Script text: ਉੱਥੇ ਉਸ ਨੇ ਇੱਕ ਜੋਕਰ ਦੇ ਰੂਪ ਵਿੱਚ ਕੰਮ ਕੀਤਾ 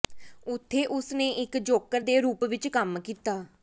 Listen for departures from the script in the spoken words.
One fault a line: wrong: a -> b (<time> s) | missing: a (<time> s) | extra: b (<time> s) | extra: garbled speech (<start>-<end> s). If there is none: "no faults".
no faults